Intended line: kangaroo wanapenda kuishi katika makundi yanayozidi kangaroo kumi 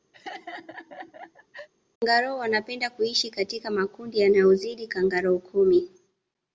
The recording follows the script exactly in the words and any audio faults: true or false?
false